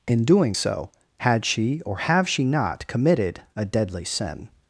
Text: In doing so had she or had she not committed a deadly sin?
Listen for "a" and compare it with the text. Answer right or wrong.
right